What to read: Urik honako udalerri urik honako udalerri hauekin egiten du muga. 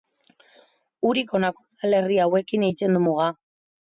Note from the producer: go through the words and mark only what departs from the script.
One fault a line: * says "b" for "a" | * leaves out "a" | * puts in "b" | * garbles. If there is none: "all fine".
* leaves out "urik honako udalerri"